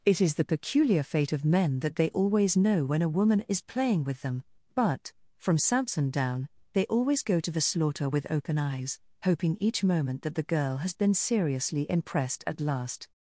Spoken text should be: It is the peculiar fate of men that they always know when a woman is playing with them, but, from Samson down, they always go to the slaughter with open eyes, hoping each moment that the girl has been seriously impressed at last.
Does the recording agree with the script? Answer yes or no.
yes